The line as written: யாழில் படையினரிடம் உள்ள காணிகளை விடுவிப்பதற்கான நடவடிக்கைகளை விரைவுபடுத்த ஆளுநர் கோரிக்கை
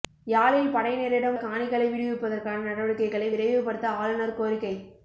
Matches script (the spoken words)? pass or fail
fail